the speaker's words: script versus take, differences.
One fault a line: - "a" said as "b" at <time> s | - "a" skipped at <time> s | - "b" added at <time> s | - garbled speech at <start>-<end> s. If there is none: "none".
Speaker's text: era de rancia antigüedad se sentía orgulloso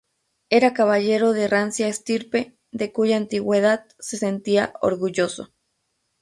- "caballero" added at 0.7 s
- "estirpe de cuya" added at 1.9 s